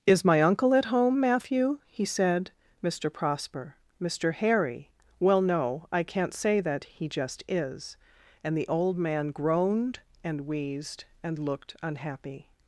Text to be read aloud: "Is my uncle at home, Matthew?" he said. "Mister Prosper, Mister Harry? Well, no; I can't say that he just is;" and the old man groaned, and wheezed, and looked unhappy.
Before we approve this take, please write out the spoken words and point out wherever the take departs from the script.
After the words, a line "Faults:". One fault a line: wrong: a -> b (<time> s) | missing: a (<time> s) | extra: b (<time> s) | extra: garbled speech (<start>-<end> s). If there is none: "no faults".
"Is my uncle at home, Matthew?" he said. "Mister Prosper, Mister Harry? Well, no; I can't say that he just is;" and the old man groaned, and wheezed, and looked unhappy.
Faults:
no faults